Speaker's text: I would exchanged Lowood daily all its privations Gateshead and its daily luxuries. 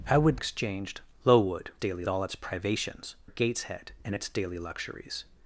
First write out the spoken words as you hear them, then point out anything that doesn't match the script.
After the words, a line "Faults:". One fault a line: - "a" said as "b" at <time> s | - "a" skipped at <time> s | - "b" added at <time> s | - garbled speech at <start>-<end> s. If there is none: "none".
I would exchanged Lowood daily all its privations Gateshead and its daily luxuries.
Faults:
none